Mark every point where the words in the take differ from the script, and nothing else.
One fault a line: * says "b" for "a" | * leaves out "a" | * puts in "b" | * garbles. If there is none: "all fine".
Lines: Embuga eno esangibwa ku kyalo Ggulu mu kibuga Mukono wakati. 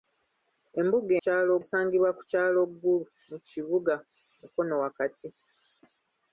* says "kyalo" for "eno"